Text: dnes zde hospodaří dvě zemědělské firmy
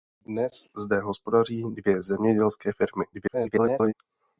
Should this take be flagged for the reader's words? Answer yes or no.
yes